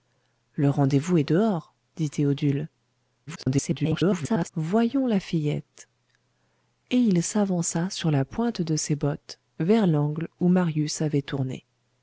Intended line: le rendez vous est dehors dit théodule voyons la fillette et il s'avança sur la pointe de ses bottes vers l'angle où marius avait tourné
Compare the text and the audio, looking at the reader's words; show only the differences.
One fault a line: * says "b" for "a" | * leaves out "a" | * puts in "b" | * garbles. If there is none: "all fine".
* garbles